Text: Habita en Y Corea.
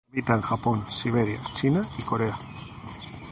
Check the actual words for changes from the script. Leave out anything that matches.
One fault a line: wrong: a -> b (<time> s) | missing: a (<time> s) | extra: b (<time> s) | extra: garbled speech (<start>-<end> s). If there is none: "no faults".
extra: Japón Siberia China (0.4 s)